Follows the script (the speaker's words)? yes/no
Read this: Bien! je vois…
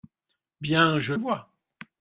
yes